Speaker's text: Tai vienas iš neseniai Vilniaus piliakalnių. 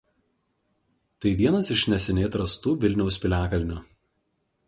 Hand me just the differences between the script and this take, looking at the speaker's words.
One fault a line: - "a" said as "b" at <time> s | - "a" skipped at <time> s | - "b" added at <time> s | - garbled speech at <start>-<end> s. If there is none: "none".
- "atrastų" added at 2.3 s